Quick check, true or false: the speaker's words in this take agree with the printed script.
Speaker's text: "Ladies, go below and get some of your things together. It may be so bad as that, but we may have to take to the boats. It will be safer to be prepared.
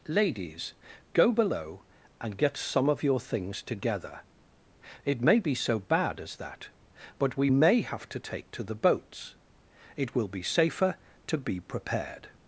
true